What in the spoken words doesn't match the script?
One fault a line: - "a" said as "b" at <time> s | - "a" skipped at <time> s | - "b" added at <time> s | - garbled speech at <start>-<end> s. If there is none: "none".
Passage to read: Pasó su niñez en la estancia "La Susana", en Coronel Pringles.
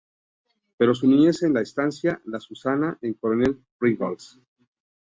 none